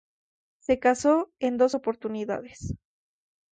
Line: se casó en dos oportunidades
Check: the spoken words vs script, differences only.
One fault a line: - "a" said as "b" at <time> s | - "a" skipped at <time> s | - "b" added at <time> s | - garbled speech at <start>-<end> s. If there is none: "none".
none